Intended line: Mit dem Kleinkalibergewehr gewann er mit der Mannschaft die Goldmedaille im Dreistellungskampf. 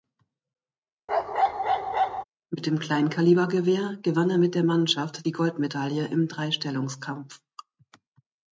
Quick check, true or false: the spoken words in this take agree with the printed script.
true